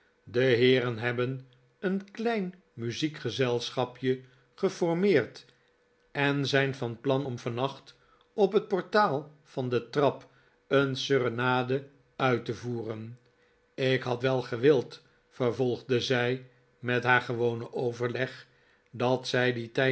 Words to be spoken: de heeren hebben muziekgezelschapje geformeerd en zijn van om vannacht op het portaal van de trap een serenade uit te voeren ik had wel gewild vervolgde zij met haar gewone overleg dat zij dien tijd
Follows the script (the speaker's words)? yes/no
no